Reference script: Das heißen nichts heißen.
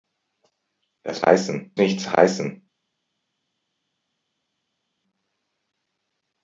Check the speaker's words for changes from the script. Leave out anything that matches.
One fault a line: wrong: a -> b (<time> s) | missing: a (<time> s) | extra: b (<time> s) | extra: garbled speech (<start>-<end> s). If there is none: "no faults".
no faults